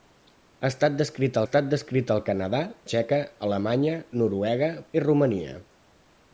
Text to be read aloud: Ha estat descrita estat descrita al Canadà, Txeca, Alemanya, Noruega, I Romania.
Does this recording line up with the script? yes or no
yes